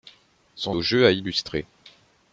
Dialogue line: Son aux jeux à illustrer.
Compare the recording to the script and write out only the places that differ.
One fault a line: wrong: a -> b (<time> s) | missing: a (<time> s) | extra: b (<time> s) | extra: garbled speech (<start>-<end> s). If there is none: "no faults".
no faults